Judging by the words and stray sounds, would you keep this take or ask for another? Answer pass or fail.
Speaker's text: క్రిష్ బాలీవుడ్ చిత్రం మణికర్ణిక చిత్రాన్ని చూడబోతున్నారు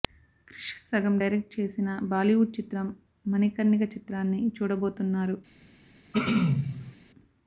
fail